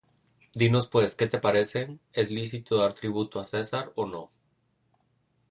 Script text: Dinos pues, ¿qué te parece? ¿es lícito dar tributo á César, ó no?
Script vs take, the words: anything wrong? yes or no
no